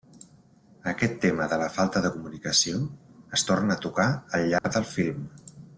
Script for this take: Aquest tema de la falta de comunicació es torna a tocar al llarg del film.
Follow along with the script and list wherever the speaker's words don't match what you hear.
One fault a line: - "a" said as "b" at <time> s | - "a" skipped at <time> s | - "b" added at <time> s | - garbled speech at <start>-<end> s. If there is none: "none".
none